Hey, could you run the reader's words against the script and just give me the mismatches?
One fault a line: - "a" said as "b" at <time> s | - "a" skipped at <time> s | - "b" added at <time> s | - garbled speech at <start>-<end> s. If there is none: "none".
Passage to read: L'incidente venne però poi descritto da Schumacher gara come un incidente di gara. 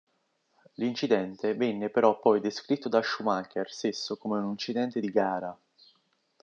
- "gara" said as "stesso" at 3.7 s